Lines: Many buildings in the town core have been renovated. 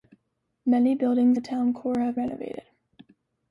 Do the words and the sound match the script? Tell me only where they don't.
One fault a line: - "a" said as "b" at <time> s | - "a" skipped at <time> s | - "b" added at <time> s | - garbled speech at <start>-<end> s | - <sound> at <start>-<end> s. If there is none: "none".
- "in" skipped at 1.4 s
- "been" skipped at 2.2 s